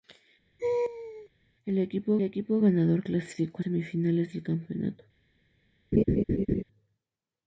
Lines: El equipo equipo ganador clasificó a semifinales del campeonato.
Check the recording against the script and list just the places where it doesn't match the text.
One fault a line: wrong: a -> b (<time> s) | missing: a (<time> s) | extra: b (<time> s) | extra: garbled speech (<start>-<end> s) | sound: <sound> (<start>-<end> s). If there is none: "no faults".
sound: laugh (0.6-1.3 s)
sound: laugh (5.9-6.6 s)